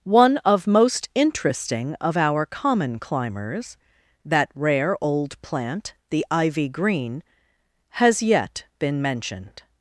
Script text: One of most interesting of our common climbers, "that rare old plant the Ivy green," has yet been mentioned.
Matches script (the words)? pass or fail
pass